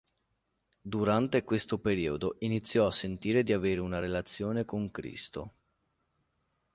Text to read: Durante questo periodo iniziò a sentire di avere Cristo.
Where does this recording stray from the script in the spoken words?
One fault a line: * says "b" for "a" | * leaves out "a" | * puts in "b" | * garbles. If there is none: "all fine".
* puts in "una relazione con"